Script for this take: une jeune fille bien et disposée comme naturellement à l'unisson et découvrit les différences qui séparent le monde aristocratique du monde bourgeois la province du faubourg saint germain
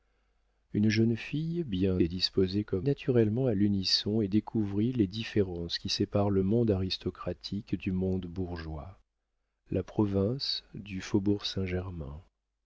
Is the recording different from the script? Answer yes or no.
no